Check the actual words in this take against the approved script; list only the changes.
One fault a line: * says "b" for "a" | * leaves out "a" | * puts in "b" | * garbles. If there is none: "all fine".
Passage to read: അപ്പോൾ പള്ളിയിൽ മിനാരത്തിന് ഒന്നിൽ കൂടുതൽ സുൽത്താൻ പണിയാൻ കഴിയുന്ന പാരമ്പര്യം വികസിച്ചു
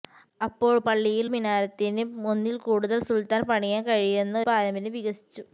all fine